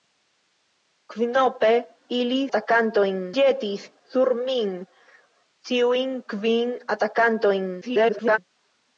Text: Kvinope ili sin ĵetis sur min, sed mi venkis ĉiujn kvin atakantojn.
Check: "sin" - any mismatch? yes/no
yes